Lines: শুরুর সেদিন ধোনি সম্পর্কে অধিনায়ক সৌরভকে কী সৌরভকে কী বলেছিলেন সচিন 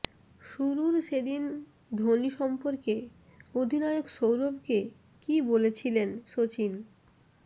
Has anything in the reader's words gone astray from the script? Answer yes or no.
yes